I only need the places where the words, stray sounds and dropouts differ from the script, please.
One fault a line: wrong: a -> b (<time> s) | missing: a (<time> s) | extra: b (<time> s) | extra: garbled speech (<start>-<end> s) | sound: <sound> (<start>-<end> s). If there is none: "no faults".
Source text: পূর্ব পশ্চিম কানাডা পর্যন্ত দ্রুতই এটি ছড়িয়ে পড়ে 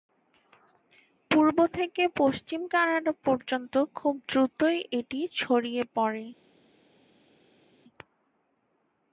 extra: থেকে (1.8 s)
extra: খুব (3.9 s)